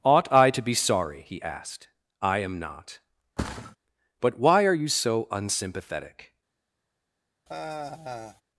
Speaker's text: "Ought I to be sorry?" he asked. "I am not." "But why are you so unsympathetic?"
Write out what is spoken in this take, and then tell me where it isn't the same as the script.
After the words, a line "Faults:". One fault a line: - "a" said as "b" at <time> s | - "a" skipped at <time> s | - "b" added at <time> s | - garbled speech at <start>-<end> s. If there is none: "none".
"Ought I to be sorry?" he asked. "I am not." "But why are you so unsympathetic?"
Faults:
none